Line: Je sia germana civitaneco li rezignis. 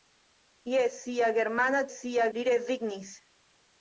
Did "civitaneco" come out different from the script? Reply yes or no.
yes